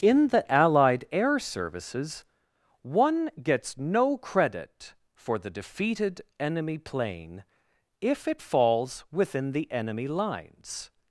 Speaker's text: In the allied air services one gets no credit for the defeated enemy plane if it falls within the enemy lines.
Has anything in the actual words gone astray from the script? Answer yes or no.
no